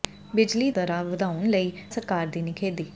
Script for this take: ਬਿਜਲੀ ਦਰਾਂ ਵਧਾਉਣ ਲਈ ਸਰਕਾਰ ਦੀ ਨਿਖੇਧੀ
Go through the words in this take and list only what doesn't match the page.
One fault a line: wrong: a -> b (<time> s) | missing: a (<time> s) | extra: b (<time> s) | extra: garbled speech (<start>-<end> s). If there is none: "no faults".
no faults